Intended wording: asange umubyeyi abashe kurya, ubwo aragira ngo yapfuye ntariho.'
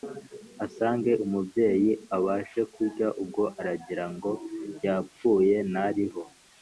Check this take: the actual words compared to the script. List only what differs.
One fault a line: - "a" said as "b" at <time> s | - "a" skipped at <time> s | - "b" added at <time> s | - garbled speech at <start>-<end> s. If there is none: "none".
none